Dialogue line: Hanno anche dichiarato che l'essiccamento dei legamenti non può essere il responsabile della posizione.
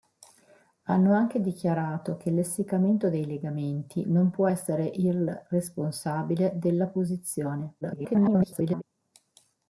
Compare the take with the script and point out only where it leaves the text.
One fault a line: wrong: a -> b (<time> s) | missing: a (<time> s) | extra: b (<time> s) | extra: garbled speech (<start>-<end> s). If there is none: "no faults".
extra: garbled speech (7.8-8.8 s)